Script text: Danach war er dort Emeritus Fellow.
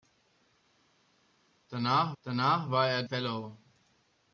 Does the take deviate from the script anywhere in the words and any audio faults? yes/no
yes